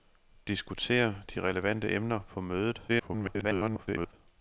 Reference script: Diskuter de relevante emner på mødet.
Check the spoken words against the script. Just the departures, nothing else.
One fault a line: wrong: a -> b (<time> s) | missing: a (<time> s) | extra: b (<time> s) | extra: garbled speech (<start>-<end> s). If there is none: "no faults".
extra: garbled speech (2.9-4.1 s)